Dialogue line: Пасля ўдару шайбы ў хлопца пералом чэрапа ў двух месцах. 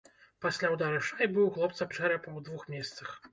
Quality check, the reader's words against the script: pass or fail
fail